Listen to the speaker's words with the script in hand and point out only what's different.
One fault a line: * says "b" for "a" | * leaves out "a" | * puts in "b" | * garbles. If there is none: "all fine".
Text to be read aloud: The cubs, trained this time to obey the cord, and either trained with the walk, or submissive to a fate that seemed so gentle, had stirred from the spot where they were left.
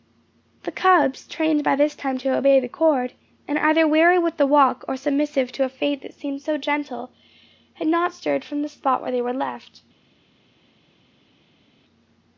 * puts in "by"
* says "weary" for "trained"
* puts in "not"